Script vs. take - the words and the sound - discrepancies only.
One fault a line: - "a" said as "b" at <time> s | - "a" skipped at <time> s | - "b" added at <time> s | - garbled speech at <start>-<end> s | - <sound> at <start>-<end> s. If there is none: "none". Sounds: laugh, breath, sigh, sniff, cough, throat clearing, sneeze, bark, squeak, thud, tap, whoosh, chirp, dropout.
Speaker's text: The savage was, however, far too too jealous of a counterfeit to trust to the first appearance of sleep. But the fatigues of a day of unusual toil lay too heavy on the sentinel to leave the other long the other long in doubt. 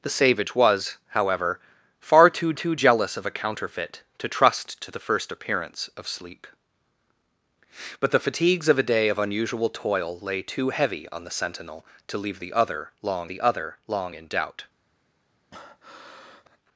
- breath at 15.5-16.6 s